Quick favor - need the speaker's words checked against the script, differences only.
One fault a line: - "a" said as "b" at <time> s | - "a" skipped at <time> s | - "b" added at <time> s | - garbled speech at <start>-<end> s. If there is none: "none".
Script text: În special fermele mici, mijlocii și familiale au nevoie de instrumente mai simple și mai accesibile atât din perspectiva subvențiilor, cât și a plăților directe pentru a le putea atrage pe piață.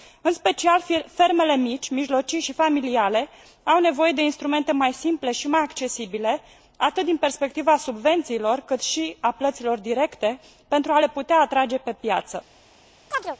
none